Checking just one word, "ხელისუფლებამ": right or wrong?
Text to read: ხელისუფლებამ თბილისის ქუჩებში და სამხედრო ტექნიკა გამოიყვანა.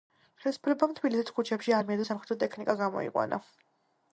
right